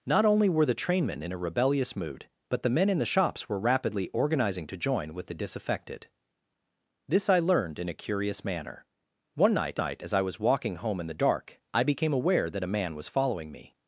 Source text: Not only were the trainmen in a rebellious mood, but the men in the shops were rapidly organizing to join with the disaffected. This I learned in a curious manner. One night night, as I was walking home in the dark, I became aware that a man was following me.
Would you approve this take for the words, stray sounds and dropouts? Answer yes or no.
yes